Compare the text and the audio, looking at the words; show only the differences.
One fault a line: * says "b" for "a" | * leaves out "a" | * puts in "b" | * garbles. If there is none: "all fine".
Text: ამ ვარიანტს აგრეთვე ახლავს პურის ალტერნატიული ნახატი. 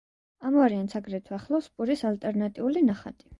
all fine